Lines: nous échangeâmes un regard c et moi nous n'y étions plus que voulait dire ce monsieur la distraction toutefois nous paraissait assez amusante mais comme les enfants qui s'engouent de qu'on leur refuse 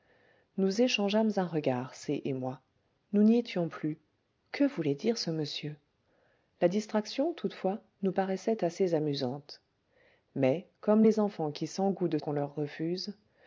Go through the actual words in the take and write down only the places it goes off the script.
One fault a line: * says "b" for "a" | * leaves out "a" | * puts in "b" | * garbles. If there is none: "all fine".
all fine